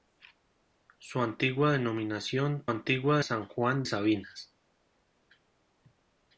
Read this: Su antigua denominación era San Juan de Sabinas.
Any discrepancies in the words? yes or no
yes